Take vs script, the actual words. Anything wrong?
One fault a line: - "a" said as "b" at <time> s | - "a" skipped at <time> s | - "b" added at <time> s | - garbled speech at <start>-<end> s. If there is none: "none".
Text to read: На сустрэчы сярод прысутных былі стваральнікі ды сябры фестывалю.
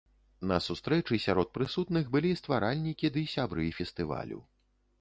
none